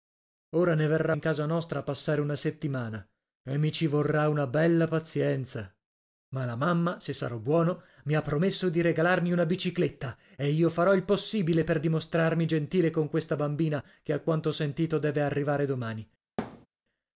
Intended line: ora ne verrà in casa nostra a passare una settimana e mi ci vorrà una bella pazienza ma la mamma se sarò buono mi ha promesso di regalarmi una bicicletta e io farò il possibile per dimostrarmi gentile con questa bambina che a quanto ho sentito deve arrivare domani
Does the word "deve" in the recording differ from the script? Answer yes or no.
no